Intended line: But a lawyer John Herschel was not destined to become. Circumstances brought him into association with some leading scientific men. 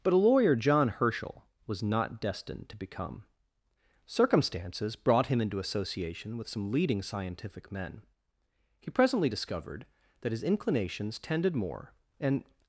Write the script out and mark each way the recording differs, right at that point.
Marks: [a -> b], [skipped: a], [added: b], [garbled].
But a lawyer John Herschel was not destined to become. Circumstances brought him into association with some leading scientific men. [added: He presently discovered that his inclinations tended more and]